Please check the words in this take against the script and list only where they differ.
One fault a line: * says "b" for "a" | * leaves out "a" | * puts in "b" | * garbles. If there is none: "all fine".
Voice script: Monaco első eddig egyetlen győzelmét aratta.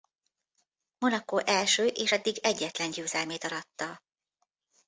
* puts in "és"